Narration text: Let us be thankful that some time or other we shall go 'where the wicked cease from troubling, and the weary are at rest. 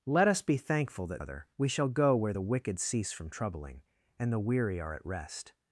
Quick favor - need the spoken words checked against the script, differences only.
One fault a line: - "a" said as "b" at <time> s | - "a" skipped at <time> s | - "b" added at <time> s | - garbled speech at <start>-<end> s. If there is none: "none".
- "some time or" skipped at 1.2 s